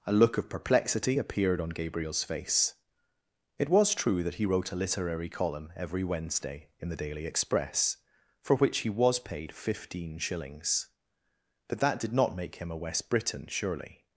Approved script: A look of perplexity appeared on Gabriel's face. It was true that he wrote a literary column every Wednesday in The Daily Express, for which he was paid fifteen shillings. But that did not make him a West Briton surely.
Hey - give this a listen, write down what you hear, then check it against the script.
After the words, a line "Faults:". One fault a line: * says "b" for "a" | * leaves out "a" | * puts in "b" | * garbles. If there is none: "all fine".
A look of perplexity appeared on Gabriel's face. It was true that he wrote a literary column every Wednesday in The Daily Express, for which he was paid fifteen shillings. But that did not make him a West Briton surely.
Faults:
all fine